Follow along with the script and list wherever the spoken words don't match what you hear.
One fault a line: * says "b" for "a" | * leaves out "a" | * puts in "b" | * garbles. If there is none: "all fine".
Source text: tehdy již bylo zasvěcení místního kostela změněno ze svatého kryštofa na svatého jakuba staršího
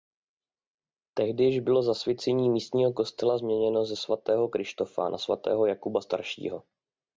all fine